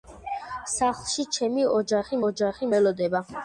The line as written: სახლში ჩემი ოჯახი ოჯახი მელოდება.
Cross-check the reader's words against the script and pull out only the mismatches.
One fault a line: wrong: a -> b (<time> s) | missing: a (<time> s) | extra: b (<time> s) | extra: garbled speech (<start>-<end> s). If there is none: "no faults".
no faults